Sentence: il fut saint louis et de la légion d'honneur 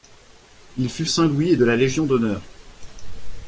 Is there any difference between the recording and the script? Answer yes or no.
no